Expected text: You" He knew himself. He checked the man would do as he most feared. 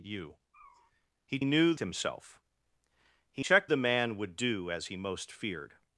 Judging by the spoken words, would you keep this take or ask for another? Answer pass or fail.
pass